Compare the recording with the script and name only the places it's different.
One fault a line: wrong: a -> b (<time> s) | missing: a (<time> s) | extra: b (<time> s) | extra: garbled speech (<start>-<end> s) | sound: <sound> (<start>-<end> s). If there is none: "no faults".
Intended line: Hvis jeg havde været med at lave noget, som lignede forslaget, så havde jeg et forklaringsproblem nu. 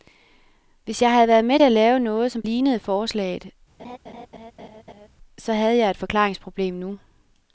sound: laugh (3.8-5.1 s)